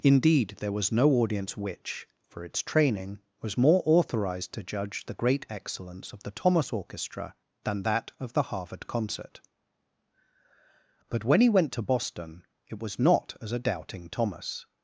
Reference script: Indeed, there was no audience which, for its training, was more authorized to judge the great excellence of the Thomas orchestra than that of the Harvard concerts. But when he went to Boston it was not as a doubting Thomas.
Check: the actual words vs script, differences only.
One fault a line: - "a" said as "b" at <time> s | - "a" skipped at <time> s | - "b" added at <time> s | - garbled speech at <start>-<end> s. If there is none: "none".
- "concerts" said as "concert" at 8.9 s